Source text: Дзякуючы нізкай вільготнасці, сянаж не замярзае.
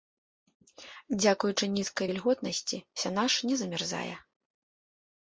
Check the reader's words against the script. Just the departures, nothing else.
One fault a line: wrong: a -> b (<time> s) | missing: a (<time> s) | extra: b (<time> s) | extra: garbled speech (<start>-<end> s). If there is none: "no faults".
no faults